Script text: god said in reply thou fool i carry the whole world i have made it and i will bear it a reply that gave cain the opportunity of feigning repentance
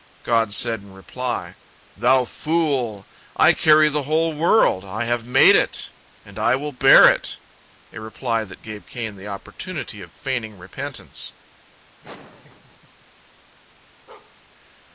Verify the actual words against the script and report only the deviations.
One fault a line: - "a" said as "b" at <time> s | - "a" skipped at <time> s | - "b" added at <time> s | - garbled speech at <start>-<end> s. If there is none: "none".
none